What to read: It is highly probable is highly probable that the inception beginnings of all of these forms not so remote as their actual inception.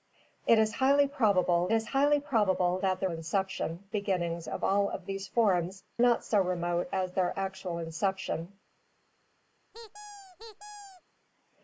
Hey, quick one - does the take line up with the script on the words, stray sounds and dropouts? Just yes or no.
no